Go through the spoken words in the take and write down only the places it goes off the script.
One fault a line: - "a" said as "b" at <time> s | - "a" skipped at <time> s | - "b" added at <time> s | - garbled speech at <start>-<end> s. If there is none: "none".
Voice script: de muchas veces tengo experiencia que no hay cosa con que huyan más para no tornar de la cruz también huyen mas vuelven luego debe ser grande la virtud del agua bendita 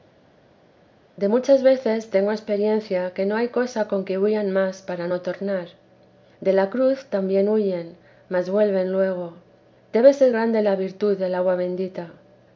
none